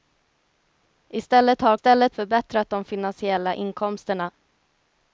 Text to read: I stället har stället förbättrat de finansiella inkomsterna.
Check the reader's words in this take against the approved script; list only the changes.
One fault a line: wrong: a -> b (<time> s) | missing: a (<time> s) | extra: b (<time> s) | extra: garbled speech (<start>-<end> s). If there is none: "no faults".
no faults